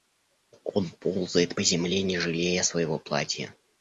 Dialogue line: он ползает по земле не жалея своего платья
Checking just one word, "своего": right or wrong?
right